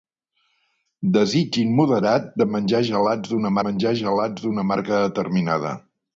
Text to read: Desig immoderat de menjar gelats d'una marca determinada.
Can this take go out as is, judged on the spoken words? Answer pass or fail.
fail